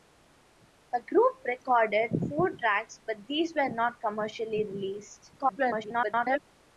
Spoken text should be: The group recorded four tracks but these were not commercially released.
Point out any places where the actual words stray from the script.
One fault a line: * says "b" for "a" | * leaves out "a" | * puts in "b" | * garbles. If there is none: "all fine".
* garbles